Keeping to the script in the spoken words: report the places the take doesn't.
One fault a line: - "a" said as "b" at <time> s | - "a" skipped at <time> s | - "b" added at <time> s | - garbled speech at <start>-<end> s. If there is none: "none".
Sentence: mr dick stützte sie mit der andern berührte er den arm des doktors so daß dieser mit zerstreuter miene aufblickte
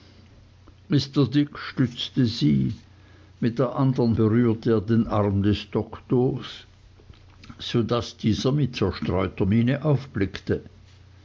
none